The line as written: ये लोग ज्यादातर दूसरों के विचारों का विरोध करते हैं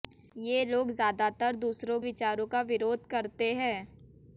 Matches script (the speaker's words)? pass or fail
fail